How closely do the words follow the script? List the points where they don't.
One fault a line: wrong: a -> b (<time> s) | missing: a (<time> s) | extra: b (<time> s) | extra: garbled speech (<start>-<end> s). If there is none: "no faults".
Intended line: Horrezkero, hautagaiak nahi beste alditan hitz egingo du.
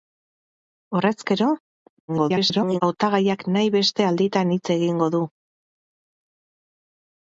extra: garbled speech (2.1-2.8 s)